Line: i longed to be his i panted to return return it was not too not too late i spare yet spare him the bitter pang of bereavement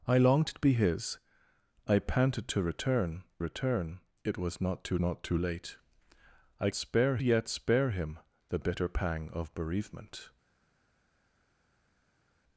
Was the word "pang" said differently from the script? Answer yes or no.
no